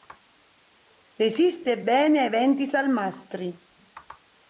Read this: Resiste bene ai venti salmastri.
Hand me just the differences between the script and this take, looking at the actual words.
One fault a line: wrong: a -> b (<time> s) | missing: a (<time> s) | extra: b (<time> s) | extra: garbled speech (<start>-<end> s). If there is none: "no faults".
no faults